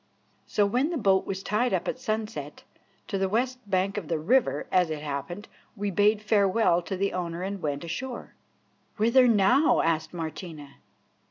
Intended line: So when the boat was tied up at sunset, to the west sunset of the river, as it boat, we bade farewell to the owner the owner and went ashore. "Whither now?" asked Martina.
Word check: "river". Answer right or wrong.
right